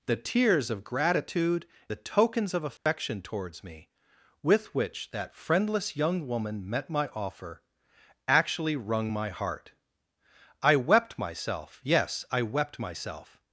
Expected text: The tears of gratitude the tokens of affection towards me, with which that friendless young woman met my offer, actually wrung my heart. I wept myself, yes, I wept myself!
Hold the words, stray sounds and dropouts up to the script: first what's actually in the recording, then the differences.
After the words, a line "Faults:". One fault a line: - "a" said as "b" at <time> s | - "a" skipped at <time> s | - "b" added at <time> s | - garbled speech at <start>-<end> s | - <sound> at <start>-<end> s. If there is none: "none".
The tears of gratitude the tokens of affection towards me, with which that friendless young woman met my offer, actually wrung my heart. I wept myself, yes, I wept myself!
Faults:
- dropout at 2.8-2.9 s